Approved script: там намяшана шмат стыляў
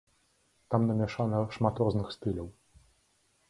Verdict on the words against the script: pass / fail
fail